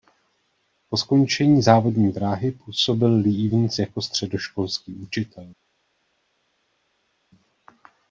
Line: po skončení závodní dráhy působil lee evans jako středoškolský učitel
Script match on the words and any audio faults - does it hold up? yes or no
yes